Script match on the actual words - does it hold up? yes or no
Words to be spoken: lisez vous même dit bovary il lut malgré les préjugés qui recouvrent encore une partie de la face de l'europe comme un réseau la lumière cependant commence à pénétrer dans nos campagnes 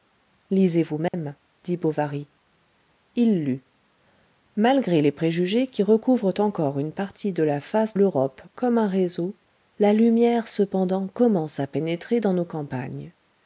no